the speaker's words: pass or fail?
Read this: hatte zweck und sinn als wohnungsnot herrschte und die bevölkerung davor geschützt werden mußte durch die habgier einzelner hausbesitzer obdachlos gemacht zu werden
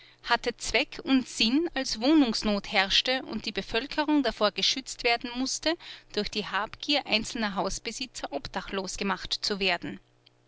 pass